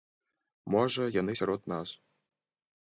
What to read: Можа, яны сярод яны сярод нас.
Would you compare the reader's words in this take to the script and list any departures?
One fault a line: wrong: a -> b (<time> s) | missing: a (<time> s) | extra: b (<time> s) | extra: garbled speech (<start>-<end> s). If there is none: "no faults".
missing: яны сярод (1.7 s)